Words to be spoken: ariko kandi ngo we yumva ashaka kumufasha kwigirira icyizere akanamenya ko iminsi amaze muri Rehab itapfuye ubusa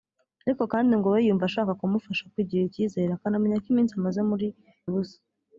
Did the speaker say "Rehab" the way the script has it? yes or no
no